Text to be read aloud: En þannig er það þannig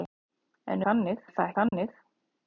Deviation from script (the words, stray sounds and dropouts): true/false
true